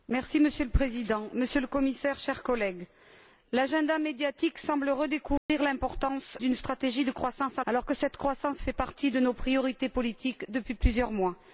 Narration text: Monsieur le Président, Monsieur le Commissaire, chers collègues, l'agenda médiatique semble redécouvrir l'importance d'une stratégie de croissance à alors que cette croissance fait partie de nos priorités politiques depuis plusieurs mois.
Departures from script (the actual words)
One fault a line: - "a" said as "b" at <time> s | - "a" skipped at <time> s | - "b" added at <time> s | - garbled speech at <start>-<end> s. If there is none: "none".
none